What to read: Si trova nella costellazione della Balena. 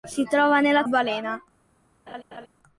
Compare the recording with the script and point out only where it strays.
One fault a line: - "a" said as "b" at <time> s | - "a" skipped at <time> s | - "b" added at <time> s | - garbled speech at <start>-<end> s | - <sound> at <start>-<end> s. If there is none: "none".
- "costellazione della" skipped at 0.8 s
- laugh at 2.1-2.5 s